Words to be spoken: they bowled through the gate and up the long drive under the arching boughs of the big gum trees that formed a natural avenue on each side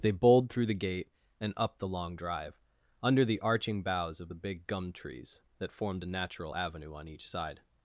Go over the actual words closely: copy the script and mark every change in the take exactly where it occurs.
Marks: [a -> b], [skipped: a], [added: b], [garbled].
they bowled through the gate and up the long drive under the arching boughs of the big gum trees that formed a natural avenue on each side